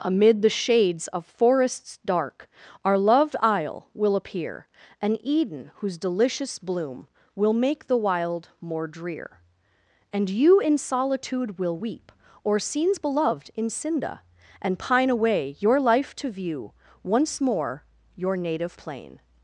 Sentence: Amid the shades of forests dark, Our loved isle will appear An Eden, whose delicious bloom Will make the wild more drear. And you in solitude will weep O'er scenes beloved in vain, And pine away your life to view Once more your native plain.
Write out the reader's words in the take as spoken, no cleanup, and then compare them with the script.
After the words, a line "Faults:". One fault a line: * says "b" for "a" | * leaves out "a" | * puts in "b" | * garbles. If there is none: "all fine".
Amid the shades of forests dark, Our loved isle will appear An Eden, whose delicious bloom Will make the wild more drear. And you in solitude will weep O'er scenes beloved in cinda, And pine away your life to view Once more your native plain.
Faults:
* says "cinda" for "vain"